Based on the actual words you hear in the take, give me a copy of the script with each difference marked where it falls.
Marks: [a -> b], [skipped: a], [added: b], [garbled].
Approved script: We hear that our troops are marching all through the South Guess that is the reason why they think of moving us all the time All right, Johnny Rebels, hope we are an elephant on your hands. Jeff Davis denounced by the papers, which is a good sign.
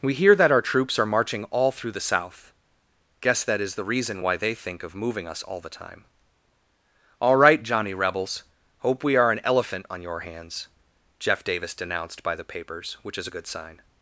We hear that our troops are marching all through the South Guess that is the reason why they think of moving us all the time All right, Johnny Rebels, hope we are an elephant on your hands. Jeff Davis denounced by the papers, which is a good sign.